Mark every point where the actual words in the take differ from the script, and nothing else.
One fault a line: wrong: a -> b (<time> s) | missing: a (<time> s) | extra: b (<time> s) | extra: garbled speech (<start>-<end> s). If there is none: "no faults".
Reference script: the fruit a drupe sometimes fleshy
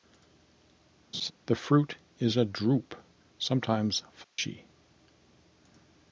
extra: is (2.2 s)